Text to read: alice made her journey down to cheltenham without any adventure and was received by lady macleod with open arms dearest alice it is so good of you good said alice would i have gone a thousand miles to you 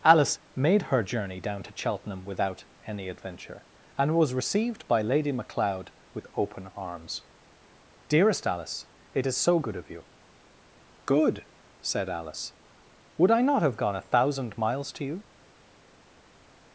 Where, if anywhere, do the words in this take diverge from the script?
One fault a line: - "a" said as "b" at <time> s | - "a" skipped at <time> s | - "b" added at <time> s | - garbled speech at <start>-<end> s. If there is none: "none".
- "not" added at 13.4 s